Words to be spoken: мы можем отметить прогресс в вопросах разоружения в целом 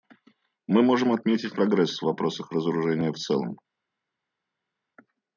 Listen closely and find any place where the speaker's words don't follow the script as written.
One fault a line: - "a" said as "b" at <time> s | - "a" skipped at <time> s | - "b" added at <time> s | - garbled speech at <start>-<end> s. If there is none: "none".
none